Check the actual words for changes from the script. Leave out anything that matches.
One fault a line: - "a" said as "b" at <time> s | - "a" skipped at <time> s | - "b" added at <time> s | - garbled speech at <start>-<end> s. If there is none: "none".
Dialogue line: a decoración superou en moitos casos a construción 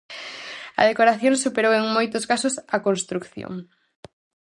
none